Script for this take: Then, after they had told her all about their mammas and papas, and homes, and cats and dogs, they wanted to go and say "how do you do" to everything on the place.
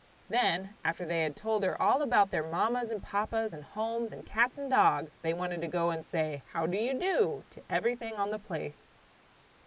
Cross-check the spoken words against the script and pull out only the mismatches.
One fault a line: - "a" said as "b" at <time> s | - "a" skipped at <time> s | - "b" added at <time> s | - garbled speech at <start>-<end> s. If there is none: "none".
none